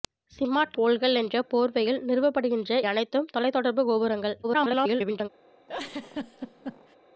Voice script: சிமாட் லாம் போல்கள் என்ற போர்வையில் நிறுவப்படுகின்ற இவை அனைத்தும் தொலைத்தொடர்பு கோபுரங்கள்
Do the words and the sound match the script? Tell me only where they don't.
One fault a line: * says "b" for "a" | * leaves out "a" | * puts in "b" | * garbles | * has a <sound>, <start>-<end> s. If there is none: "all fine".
* leaves out "லாம்"
* leaves out "இவை"
* garbles
* has a laugh, 5.7-7.0 s